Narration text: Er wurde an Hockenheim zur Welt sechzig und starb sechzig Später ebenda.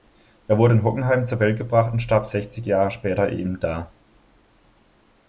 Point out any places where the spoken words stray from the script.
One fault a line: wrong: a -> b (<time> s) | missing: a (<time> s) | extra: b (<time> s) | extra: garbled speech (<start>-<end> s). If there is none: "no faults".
wrong: an -> in (0.7 s)
wrong: sechzig -> gebracht (1.6 s)
extra: Jahre (2.7 s)